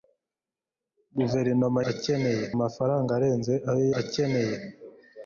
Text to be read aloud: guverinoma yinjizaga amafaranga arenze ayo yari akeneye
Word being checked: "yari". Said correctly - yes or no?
no